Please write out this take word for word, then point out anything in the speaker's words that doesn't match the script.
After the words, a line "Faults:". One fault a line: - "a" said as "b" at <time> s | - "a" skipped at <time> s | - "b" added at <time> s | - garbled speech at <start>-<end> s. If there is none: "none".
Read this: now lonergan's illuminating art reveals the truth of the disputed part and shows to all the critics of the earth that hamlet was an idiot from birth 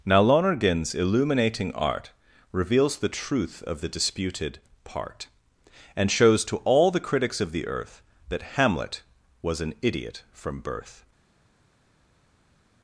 now lonergan's illuminating art reveals the truth of the disputed part and shows to all the critics of the earth that hamlet was an idiot from birth
Faults:
none